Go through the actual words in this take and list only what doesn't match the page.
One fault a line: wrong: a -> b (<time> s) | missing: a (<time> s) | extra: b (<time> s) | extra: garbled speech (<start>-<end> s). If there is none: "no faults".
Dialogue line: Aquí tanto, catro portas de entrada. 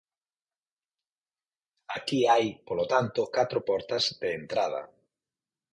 extra: hai polo (2.3 s)